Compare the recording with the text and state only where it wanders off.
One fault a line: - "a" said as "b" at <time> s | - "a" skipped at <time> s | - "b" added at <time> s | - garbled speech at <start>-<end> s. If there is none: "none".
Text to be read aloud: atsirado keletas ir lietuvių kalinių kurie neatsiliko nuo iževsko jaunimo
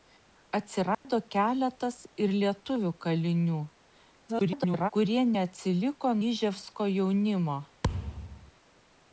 - garbled speech at 4.3-4.9 s
- "nuo" skipped at 6.2 s